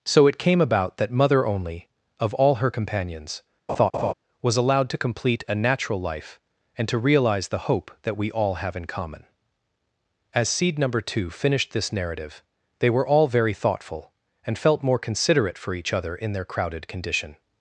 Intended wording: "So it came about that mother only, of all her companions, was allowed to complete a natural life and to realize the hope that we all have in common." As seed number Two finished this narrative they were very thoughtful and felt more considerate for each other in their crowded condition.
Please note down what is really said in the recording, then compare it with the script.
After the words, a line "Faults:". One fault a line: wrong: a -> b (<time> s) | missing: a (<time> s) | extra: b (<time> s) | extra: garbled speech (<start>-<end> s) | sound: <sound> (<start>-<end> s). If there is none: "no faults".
"So it came about that mother only, of all her companions, was allowed to complete a natural life and to realize the hope that we all have in common." As seed number Two finished this narrative they were all very thoughtful and felt more considerate for each other in their crowded condition.
Faults:
sound: laugh (3.7-4.1 s)
extra: all (13.1 s)